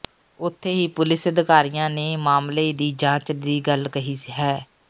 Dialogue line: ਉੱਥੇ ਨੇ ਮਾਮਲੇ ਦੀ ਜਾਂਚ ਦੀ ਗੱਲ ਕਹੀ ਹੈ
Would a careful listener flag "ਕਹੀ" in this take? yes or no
no